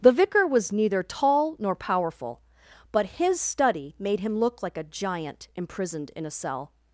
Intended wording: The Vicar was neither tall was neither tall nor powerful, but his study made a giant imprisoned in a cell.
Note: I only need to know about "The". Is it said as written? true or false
true